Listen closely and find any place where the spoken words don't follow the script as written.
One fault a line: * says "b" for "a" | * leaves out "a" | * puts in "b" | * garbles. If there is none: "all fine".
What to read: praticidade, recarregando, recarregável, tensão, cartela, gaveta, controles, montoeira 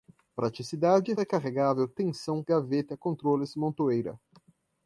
* leaves out "recarregando"
* leaves out "cartela"